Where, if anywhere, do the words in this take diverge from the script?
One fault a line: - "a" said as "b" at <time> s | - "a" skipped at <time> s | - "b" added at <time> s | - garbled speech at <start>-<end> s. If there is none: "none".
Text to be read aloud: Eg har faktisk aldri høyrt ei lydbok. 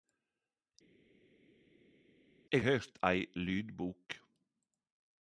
- "har faktisk aldri" skipped at 2.6 s